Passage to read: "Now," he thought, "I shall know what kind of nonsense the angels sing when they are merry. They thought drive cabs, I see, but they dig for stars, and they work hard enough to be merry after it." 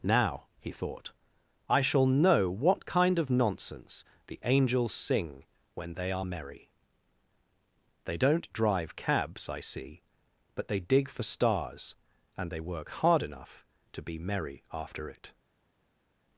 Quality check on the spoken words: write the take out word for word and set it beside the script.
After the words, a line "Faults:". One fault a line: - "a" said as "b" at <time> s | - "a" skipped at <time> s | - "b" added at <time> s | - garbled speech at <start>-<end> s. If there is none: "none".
"Now," he thought, "I shall know what kind of nonsense the angels sing when they are merry. They don't drive cabs, I see, but they dig for stars, and they work hard enough to be merry after it."
Faults:
- "thought" said as "don't" at 8.2 s